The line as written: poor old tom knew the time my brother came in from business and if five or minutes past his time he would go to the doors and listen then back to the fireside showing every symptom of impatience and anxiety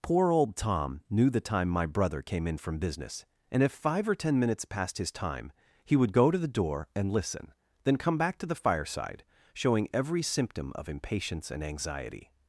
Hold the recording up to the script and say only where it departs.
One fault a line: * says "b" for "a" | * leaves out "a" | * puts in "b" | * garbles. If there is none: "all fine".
* puts in "ten"
* says "door" for "doors"
* puts in "come"